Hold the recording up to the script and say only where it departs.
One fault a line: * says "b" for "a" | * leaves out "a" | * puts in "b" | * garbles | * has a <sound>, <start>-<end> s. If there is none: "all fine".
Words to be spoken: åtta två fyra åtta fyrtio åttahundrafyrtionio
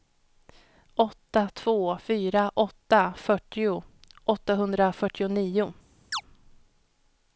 * has a chirp, 6.1-6.2 s